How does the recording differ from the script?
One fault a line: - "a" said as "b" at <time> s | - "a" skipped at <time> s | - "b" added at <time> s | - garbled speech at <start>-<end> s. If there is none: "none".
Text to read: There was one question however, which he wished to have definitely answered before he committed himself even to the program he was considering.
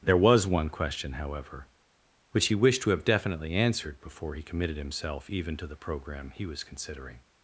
none